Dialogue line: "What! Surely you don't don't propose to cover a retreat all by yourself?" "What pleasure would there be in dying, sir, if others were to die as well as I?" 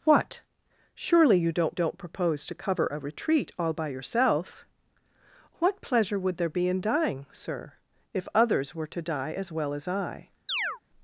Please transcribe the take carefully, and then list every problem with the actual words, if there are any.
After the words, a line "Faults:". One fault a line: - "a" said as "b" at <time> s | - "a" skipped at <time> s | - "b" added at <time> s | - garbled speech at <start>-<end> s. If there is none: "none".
"What! Surely you don't don't propose to cover a retreat all by yourself?" "What pleasure would there be in dying, sir, if others were to die as well as I?"
Faults:
none